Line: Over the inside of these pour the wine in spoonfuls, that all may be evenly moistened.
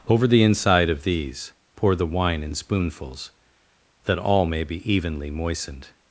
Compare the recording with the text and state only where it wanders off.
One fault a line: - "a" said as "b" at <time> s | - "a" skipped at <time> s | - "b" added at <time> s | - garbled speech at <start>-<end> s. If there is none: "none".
none